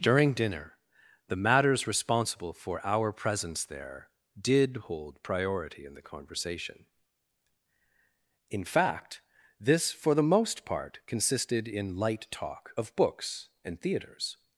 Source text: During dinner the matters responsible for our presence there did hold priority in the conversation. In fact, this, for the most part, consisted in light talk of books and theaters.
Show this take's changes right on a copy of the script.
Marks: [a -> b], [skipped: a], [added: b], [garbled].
During dinner the matters responsible for our presence there did hold priority in the conversation. In fact, this, for the most part, consisted in light talk of books and theaters.